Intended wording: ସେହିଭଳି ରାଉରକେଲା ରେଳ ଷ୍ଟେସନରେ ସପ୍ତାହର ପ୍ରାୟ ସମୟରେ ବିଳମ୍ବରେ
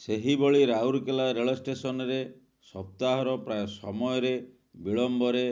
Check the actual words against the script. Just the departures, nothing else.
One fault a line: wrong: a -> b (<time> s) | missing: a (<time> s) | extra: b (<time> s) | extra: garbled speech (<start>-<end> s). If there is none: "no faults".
no faults